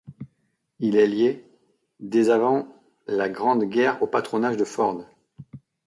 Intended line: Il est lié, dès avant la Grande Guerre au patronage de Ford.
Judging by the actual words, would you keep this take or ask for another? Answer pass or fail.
pass